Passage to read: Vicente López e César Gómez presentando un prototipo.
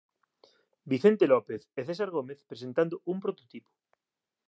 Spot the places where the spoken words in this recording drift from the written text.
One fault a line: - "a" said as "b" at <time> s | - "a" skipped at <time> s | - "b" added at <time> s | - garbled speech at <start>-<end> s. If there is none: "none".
none